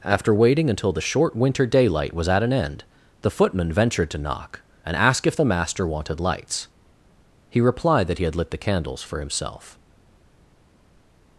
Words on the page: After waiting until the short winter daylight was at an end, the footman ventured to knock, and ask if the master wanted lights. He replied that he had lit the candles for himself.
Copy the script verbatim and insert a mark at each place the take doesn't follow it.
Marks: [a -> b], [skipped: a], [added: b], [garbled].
After waiting until the short winter daylight was at an end, the footman ventured to knock, and ask if the master wanted lights. He replied that he had lit the candles for himself.